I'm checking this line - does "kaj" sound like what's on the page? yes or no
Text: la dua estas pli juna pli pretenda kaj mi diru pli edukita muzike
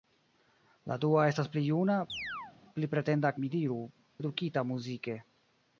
no